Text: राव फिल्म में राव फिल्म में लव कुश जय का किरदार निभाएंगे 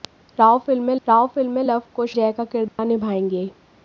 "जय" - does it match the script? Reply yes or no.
yes